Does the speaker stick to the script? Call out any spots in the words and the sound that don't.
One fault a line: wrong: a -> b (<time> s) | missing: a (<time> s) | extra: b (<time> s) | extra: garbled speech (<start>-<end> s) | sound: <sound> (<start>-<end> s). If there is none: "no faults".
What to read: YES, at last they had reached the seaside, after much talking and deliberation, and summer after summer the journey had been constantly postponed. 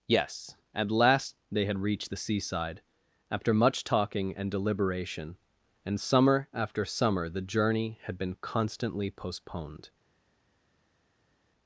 no faults